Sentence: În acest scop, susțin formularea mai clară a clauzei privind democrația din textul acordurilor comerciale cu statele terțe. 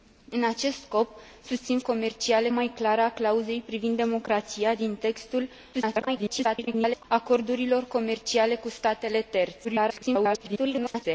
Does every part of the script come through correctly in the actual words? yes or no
no